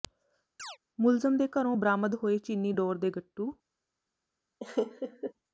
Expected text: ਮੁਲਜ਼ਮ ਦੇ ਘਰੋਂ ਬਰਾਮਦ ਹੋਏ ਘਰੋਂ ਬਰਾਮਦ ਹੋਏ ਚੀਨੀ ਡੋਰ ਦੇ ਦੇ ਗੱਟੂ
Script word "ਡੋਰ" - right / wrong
right